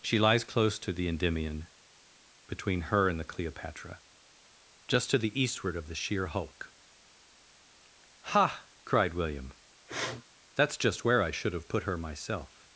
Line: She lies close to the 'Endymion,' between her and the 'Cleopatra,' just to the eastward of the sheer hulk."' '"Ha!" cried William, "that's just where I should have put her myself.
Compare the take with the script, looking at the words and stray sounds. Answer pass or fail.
fail